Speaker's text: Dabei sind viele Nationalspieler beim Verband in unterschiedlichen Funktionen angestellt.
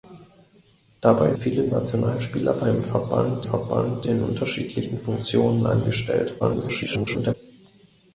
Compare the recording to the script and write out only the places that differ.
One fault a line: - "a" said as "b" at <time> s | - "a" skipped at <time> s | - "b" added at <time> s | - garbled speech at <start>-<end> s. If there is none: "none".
- "sind" skipped at 1.4 s
- "Verband" added at 3.4 s
- garbled speech at 6.4-7.3 s